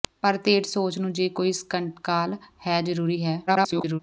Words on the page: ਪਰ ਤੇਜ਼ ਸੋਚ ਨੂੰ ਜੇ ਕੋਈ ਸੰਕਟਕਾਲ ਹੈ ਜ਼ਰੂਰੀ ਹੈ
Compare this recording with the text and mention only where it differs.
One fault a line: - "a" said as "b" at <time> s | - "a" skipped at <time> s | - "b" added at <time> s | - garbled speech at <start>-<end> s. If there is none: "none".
- garbled speech at 3.5-4.0 s